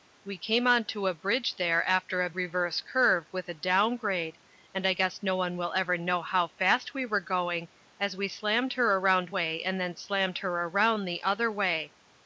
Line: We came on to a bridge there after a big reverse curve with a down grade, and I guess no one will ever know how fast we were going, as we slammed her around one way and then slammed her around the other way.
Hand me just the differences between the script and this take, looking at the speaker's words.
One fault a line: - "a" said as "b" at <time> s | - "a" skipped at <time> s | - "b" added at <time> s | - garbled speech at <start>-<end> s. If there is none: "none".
- "big" skipped at 2.3 s
- "one" skipped at 9.3 s